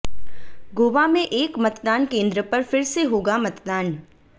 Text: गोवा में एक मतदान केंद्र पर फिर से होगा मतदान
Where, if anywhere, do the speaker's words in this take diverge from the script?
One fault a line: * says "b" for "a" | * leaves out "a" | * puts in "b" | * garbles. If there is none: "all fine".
all fine